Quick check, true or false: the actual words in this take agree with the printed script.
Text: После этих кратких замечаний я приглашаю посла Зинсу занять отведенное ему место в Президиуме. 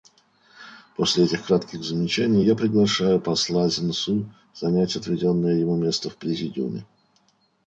true